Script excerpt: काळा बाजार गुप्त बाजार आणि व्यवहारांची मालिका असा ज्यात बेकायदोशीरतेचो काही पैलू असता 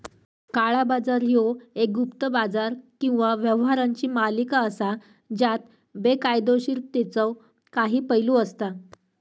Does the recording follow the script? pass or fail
fail